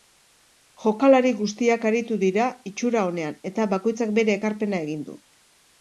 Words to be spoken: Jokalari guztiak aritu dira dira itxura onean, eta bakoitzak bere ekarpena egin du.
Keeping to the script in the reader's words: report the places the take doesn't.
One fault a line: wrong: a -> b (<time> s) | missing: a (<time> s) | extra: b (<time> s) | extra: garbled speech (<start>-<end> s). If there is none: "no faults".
missing: dira (2.5 s)